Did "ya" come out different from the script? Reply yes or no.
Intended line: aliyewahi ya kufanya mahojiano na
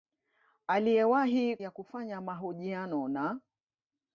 no